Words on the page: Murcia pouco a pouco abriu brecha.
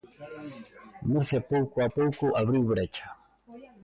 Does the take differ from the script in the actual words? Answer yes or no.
no